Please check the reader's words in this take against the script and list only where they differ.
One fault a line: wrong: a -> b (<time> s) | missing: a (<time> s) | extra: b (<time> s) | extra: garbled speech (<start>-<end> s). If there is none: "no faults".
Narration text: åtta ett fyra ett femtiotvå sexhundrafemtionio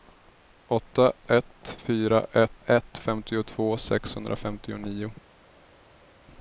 extra: ett (2.7 s)